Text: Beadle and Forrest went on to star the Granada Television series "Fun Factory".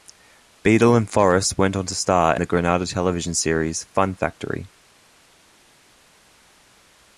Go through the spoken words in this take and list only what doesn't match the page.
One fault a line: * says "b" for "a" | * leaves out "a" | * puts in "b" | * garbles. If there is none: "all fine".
all fine